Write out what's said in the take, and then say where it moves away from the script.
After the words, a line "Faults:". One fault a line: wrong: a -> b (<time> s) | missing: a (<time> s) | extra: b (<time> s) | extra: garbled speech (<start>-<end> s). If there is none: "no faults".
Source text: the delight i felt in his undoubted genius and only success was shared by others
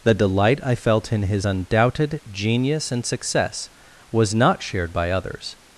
the delight i felt in his undoubted genius and success was not shared by others
Faults:
missing: only (3.0 s)
extra: not (4.3 s)